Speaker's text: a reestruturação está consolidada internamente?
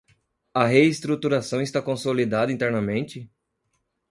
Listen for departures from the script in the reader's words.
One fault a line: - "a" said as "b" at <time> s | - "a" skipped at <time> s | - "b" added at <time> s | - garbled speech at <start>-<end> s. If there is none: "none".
none